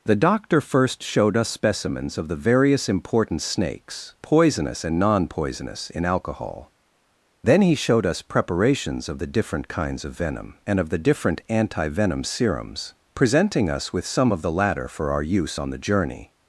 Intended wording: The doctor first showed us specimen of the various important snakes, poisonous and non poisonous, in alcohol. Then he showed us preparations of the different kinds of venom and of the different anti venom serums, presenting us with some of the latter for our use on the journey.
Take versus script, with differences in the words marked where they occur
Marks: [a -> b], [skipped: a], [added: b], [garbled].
The doctor first showed us [specimen -> specimens] of the various important snakes, poisonous and non poisonous, in alcohol. Then he showed us preparations of the different kinds of venom and of the different anti venom serums, presenting us with some of the latter for our use on the journey.